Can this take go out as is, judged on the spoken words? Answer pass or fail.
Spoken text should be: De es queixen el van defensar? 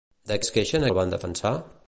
pass